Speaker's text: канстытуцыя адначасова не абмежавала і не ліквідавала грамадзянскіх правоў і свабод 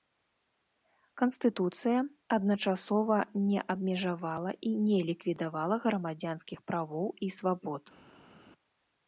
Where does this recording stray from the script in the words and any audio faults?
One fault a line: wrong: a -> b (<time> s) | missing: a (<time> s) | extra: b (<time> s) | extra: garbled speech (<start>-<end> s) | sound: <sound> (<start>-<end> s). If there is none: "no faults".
no faults